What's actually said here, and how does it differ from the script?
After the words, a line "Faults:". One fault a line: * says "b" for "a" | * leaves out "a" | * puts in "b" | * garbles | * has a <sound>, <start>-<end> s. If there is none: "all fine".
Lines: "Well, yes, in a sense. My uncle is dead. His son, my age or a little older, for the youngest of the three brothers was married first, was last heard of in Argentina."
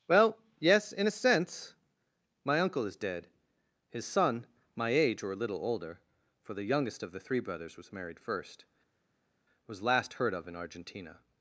"Well, yes, in a sense. My uncle is dead. His son, my age or a little older, for the youngest of the three brothers was married first, was last heard of in Argentina."
Faults:
all fine